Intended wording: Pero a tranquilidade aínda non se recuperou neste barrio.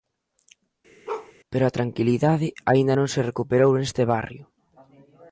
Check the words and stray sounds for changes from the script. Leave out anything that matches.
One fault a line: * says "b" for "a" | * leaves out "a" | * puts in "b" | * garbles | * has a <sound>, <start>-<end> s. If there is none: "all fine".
* has a bark, 1.1-1.3 s